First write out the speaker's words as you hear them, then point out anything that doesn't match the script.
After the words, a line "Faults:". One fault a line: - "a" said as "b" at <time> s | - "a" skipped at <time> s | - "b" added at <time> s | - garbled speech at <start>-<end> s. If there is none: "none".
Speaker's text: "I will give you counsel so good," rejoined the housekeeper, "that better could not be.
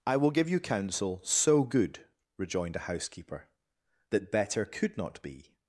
"I will give you counsel so good," rejoined a housekeeper, "that better could not be.
Faults:
- "the" said as "a" at 2.8 s